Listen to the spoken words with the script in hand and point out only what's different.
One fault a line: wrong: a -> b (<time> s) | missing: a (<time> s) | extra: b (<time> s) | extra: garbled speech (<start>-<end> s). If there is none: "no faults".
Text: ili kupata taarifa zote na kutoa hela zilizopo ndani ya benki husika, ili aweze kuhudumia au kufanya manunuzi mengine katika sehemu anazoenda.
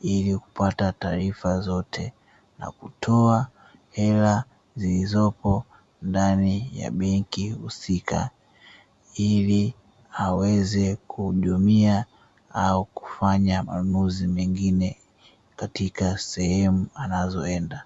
no faults